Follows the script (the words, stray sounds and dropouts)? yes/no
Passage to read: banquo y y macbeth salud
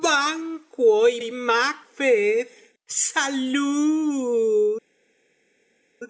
yes